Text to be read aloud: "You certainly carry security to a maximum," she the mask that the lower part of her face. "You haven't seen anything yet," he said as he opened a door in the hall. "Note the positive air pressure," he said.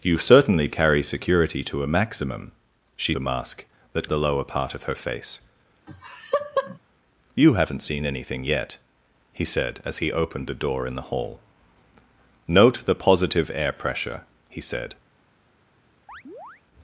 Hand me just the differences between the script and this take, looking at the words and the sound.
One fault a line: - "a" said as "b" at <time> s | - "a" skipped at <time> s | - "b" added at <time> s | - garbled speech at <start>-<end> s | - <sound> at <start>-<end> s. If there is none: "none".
- laugh at 5.9-6.8 s
- chirp at 16.1-16.6 s